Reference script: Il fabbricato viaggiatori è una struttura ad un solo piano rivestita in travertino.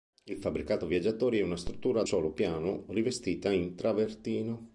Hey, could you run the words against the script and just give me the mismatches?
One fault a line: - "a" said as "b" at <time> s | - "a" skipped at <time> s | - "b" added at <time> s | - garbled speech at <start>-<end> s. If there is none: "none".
- "un" skipped at 2.1 s